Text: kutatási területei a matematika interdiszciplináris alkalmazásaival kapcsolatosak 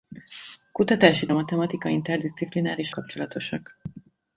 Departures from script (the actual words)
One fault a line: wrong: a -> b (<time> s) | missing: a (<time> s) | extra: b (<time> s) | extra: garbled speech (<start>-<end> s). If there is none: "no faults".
missing: területei (1.3 s)
missing: alkalmazásaival (2.9 s)